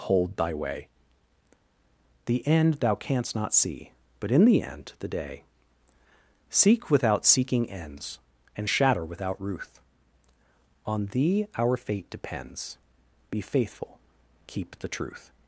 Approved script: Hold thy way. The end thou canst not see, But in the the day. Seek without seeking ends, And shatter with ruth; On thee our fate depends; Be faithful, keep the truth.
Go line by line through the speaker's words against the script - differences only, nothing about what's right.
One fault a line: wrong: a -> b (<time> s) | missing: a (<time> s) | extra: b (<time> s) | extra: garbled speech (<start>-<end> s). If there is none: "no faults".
extra: end (4.6 s)
wrong: with -> without (9.0 s)